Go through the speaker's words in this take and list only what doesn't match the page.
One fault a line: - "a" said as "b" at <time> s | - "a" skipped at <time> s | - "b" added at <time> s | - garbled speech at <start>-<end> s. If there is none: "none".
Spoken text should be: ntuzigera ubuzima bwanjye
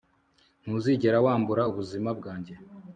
- "wambura" added at 1.2 s